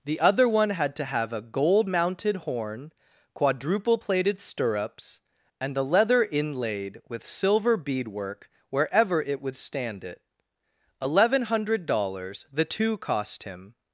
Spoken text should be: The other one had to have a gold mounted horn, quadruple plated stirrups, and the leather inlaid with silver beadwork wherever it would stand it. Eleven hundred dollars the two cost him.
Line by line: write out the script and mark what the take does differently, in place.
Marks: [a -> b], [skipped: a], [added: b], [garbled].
The other one had to have a gold mounted horn, quadruple plated stirrups, and the leather inlaid with silver beadwork wherever it would stand it. Eleven hundred dollars the two cost him.